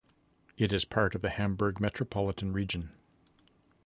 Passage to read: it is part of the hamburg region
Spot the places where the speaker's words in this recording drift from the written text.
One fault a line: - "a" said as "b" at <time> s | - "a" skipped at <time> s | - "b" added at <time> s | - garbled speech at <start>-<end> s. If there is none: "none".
- "metropolitan" added at 1.8 s